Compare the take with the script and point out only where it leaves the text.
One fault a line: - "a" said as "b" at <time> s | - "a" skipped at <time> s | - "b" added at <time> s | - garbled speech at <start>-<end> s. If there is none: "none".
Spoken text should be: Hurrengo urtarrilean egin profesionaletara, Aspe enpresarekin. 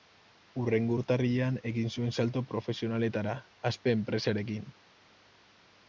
- "zuen salto" added at 1.9 s